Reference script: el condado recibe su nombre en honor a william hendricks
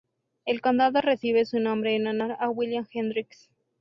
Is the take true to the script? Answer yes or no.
yes